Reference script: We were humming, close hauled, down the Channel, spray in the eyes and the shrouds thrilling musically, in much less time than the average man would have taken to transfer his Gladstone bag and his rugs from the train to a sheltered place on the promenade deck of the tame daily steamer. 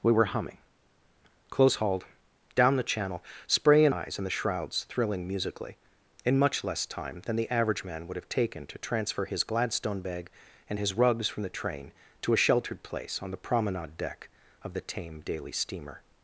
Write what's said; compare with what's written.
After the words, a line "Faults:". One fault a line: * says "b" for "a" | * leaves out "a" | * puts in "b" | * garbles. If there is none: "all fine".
We were humming, close hauled, down the Channel, spray in eyes and the shrouds thrilling musically, in much less time than the average man would have taken to transfer his Gladstone bag and his rugs from the train to a sheltered place on the promenade deck of the tame daily steamer.
Faults:
* leaves out "the"